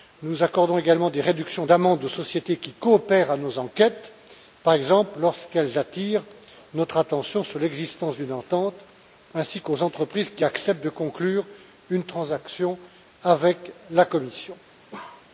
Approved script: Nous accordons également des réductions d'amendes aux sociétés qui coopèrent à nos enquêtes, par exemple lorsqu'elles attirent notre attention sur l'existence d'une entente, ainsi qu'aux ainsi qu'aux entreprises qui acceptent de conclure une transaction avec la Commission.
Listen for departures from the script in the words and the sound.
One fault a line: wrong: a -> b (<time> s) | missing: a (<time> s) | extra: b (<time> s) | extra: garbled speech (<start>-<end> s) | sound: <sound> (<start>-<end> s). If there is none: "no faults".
missing: ainsi qu'aux (9.8 s)
sound: bark (14.9-15.3 s)